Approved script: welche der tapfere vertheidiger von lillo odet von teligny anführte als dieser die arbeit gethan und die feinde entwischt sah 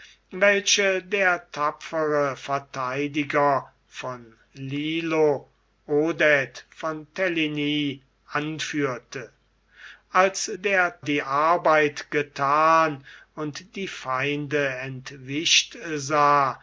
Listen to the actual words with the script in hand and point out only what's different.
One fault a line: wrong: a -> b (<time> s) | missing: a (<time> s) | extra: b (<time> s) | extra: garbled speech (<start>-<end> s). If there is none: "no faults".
wrong: dieser -> der (10.6 s)